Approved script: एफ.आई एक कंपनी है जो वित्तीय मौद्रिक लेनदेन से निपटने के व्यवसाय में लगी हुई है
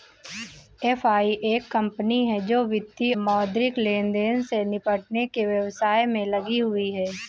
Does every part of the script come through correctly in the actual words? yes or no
yes